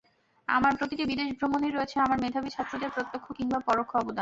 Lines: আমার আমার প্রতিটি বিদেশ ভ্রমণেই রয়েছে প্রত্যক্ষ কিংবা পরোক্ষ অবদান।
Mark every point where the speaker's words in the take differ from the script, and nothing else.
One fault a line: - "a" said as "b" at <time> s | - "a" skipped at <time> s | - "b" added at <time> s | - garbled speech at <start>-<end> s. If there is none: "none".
- "আমার" skipped at 0.7 s
- "আমার মেধাবী ছাত্রদের" added at 2.0 s